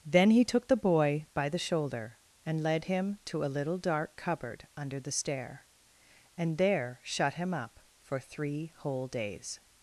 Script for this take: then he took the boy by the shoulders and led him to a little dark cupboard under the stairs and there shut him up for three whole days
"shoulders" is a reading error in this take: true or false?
true